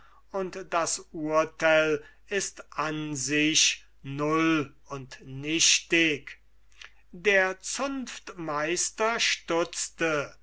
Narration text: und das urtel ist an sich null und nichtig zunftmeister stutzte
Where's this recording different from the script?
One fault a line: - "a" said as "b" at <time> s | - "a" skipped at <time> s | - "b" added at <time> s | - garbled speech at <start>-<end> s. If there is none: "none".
- "der" added at 7.1 s